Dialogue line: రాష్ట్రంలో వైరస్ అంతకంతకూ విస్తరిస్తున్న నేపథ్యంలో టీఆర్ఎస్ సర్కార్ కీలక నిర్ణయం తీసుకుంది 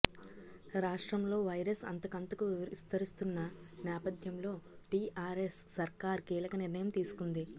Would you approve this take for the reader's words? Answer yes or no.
yes